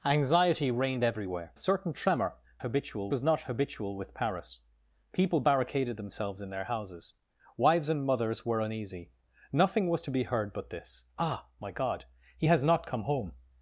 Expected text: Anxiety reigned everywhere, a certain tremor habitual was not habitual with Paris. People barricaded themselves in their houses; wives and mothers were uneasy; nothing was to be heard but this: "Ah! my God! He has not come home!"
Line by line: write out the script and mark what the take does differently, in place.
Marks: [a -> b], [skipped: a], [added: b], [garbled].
Anxiety reigned everywhere, a certain tremor habitual was not habitual with Paris. People barricaded themselves in their houses; wives and mothers were uneasy; nothing was to be heard but this: "Ah! my God! He has not come home!"